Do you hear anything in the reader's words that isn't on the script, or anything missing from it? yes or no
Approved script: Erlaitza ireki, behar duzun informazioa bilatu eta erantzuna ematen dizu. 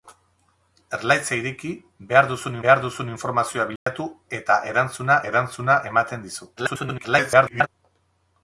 yes